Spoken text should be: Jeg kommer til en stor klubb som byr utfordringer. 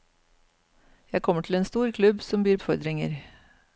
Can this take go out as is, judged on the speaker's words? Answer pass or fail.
pass